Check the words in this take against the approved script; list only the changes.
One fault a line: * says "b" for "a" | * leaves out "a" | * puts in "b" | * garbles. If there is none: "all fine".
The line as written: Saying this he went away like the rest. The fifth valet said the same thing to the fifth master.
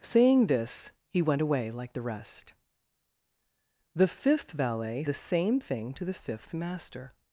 * leaves out "said"